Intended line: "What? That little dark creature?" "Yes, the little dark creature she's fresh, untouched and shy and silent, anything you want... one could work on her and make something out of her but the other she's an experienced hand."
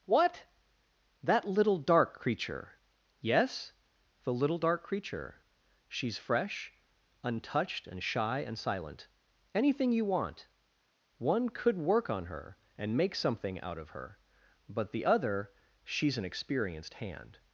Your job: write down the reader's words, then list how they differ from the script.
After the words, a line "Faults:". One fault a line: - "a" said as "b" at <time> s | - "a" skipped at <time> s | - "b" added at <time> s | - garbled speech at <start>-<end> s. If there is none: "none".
"What? That little dark creature?" "Yes, the little dark creature she's fresh, untouched and shy and silent, anything you want... one could work on her and make something out of her but the other she's an experienced hand."
Faults:
none